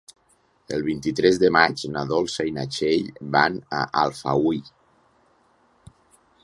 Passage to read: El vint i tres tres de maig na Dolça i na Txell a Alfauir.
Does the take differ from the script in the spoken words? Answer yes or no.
yes